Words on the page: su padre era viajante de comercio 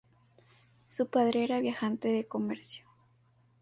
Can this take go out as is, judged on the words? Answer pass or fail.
pass